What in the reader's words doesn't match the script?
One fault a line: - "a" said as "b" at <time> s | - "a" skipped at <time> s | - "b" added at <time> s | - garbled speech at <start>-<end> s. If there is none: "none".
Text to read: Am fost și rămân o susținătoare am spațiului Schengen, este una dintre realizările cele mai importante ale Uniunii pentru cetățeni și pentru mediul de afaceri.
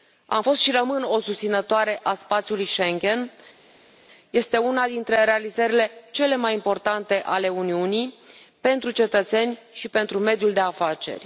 - "am" said as "a" at 2.0 s